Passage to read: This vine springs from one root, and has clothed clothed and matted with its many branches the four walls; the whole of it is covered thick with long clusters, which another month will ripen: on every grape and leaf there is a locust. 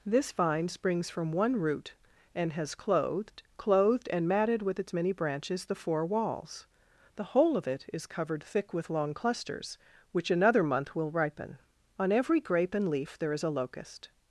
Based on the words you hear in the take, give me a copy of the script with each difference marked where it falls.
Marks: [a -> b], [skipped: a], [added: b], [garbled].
This vine springs from one root, and has clothed clothed and matted with its many branches the four walls; the whole of it is covered thick with long clusters, which another month will ripen: on every grape and leaf there is a locust.